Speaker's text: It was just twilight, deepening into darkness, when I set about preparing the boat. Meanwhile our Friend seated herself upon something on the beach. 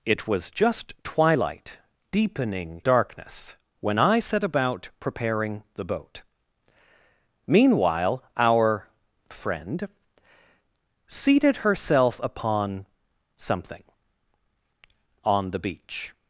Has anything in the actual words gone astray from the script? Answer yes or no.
yes